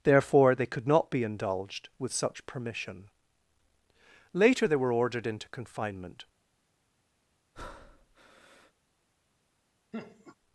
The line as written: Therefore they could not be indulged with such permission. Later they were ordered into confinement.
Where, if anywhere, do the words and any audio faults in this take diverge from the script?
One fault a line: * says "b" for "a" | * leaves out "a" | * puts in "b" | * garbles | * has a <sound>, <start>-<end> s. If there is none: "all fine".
* has a breath, 7.5-8.7 s
* has a laugh, 9.9-10.4 s